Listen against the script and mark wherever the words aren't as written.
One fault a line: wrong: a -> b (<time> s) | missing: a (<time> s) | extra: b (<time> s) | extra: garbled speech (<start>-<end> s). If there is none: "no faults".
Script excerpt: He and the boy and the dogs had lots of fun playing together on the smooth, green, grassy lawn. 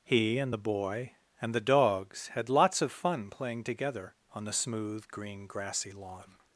no faults